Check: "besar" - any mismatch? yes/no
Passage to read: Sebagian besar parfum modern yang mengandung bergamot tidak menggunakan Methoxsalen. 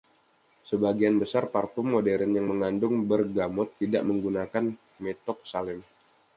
no